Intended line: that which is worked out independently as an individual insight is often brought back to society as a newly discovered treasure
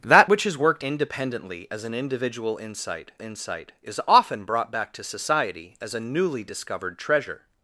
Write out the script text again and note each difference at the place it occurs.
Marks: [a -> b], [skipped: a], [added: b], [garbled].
that which is worked [skipped: out] independently as an individual insight [added: insight] is often brought back to society as a newly discovered treasure